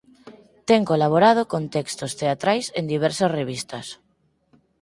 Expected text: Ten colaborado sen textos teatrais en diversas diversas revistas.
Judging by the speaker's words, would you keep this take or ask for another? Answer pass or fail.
fail